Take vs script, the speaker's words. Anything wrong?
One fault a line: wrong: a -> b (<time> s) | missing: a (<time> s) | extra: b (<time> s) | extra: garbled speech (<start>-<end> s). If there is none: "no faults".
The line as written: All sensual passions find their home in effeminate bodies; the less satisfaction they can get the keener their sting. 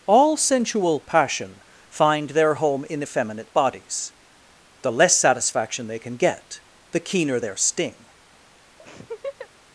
wrong: passions -> passion (1.0 s)